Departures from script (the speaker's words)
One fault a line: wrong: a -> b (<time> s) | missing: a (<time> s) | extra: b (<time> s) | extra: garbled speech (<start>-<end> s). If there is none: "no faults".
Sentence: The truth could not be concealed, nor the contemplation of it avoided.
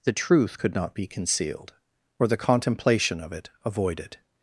wrong: nor -> or (2.2 s)